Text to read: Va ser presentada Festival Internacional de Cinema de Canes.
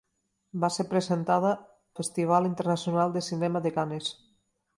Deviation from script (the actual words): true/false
false